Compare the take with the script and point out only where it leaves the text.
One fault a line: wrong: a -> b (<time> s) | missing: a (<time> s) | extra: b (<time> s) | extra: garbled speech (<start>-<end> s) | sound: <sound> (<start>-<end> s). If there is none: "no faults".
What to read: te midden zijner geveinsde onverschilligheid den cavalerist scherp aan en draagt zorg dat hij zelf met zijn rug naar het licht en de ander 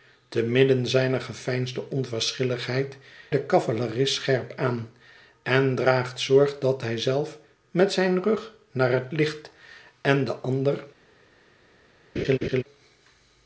sound: laugh (12.2-12.6 s)